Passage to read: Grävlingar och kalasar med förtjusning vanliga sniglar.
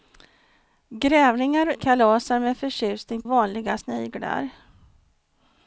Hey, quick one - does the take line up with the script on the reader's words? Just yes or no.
yes